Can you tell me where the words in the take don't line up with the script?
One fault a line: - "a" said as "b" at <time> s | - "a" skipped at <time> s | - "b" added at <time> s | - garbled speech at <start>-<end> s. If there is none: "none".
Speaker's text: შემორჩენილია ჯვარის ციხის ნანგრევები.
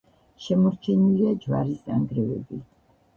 - "ციხის" skipped at 1.9 s